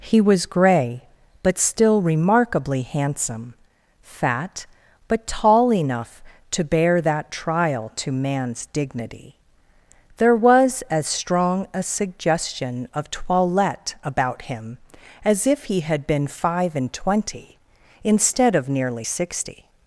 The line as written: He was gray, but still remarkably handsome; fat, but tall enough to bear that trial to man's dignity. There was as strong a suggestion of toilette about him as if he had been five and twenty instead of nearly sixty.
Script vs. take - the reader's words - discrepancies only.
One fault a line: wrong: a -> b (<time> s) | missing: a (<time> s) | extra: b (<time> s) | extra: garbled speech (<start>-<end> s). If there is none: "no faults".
no faults